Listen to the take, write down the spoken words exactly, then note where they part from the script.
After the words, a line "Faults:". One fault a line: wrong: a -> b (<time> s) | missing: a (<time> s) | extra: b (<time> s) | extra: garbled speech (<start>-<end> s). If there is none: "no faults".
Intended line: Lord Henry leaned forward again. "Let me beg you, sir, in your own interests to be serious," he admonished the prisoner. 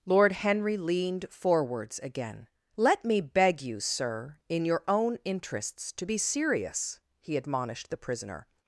Lord Henry leaned forwards again. "Let me beg you, sir, in your own interests to be serious," he admonished the prisoner.
Faults:
wrong: forward -> forwards (1.3 s)